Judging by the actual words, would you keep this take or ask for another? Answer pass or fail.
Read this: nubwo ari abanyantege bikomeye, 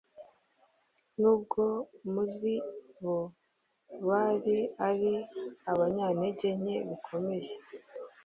fail